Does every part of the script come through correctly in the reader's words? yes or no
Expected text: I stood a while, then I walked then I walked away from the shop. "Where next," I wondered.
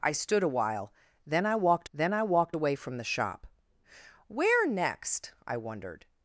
yes